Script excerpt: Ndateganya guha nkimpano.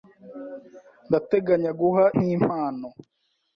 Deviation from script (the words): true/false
false